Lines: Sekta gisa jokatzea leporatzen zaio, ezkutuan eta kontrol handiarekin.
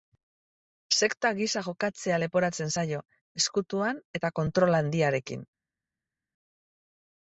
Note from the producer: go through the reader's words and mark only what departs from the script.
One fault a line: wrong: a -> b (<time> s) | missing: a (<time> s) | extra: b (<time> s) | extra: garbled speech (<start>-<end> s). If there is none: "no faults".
no faults